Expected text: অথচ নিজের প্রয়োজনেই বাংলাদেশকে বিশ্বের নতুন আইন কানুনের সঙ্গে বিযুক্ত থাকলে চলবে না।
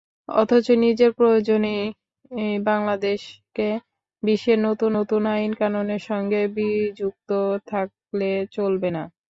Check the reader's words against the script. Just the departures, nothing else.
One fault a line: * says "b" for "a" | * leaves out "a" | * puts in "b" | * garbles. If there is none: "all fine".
* puts in "নতুন"